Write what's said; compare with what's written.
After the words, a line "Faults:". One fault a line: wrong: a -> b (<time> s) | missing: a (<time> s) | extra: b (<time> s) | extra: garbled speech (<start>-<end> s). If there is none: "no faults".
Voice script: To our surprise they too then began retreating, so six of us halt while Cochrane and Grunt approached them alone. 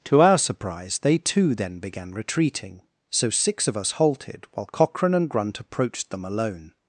To our surprise they too then began retreating, so six of us halted while Cochrane and Grunt approached them alone.
Faults:
wrong: halt -> halted (3.9 s)